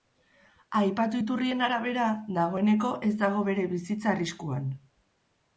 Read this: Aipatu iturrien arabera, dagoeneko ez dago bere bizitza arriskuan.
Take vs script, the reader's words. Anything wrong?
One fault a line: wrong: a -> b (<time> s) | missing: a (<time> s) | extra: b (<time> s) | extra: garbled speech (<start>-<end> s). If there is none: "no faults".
no faults